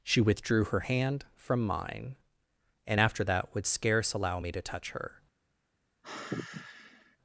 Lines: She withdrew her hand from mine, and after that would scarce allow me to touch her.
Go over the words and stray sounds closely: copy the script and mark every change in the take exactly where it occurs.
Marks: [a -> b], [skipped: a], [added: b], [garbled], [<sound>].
She withdrew her hand from mine, and after that would scarce allow me to touch her. [sigh]